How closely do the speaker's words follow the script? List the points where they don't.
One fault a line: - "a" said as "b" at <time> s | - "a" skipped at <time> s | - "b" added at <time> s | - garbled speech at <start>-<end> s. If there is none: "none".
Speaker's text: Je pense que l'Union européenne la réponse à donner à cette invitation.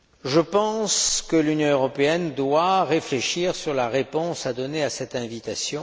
- "doit réfléchir à" added at 2.3 s